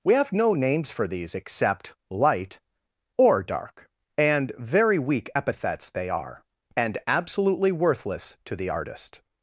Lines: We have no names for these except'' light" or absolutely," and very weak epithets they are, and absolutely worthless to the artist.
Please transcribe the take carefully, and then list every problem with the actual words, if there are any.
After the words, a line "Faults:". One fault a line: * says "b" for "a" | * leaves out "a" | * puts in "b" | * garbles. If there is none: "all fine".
We have no names for these except'' light" or dark," and very weak epithets they are, and absolutely worthless to the artist.
Faults:
* says "dark" for "absolutely"